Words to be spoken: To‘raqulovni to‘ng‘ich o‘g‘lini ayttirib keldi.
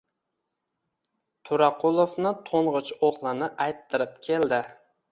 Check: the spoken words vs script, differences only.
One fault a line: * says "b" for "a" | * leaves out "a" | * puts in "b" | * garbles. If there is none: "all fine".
all fine